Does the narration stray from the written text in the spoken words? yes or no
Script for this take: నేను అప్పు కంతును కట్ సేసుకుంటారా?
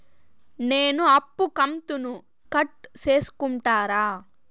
no